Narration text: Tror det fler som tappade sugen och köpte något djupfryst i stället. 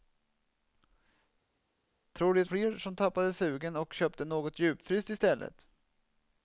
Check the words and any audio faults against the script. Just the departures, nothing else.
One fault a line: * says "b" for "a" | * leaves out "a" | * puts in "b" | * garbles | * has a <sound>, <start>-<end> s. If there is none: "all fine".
all fine